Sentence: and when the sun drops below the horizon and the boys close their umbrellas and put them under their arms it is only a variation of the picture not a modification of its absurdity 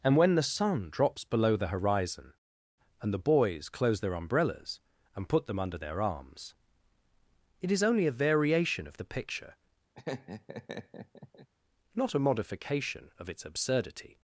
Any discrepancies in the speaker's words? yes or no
no